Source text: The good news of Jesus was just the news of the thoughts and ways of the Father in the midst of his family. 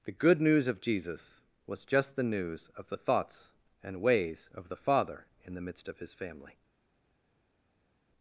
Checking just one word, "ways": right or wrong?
right